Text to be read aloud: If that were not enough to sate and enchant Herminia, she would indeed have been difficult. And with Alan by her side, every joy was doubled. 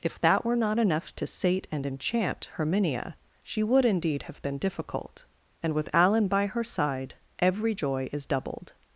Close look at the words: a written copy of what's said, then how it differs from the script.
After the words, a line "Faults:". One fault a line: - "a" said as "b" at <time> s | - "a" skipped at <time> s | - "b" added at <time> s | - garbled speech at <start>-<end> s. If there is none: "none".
If that were not enough to sate and enchant Herminia, she would indeed have been difficult. And with Alan by her side, every joy is doubled.
Faults:
- "was" said as "is" at 8.1 s